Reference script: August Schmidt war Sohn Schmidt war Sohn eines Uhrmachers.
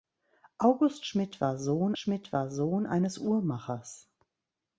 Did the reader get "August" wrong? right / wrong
right